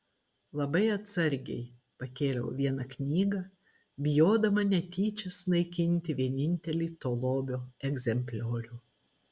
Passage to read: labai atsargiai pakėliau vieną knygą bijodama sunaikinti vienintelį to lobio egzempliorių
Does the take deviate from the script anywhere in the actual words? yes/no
yes